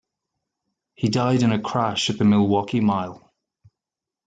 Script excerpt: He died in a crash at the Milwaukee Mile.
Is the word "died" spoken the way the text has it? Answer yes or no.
yes